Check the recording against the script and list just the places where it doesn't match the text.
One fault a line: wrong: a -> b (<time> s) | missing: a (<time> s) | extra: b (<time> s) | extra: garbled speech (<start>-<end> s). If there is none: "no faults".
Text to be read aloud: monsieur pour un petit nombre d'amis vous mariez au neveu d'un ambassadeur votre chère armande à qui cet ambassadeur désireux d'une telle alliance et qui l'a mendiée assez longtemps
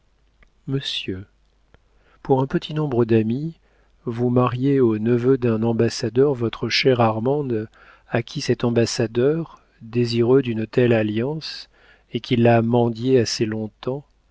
no faults